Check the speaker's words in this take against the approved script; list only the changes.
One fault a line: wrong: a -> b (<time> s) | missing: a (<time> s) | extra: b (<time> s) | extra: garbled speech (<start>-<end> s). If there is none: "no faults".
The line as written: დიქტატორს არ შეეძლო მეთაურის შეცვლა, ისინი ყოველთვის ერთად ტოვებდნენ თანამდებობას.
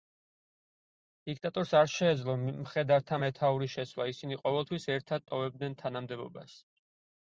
extra: მხედართა (2.5 s)